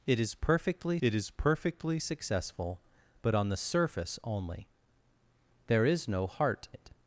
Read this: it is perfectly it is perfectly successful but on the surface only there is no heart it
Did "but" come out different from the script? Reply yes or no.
no